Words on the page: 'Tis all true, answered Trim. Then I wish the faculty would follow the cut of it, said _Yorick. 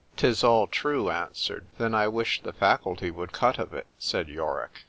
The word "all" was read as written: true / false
true